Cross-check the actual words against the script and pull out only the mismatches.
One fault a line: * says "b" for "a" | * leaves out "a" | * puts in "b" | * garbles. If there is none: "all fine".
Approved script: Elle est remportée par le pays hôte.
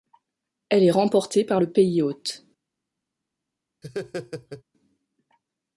all fine